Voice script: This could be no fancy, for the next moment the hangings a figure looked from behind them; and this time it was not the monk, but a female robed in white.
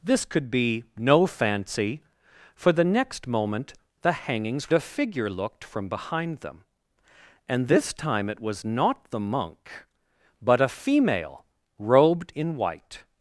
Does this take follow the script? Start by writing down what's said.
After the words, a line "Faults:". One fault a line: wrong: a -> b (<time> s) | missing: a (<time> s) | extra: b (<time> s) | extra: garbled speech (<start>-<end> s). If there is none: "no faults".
This could be no fancy, for the next moment the hangings a figure looked from behind them; and this time it was not the monk, but a female robed in white.
Faults:
no faults